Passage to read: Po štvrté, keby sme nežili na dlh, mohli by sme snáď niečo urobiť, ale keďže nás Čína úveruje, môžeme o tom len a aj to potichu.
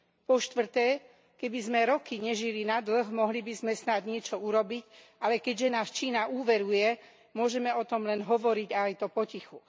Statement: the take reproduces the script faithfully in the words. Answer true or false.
false